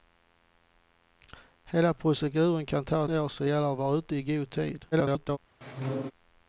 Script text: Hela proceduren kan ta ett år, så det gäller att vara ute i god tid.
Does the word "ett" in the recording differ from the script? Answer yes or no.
yes